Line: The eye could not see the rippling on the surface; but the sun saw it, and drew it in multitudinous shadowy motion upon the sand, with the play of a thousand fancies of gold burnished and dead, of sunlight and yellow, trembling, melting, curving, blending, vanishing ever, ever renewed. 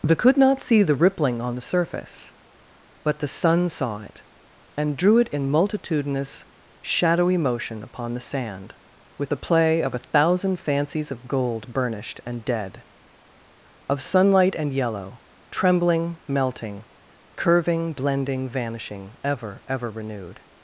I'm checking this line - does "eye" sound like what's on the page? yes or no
no